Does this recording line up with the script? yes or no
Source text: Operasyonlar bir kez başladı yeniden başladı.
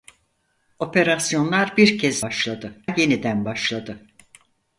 yes